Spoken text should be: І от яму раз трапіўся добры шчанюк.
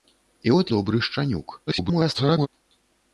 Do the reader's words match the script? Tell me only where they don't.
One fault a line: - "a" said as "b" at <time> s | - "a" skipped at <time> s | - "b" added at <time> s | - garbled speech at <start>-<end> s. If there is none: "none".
- "яму раз трапіўся" skipped at 0.7 s
- garbled speech at 1.7-2.5 s